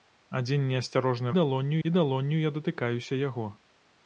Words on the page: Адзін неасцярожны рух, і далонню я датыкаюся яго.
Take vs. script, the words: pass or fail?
fail